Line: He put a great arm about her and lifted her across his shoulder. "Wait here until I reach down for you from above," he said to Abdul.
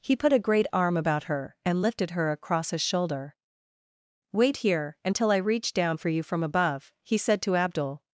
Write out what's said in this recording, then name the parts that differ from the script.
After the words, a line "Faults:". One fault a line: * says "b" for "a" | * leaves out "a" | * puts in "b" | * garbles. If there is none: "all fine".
He put a great arm about her and lifted her across his shoulder. "Wait here until I reach down for you from above," he said to Abdul.
Faults:
all fine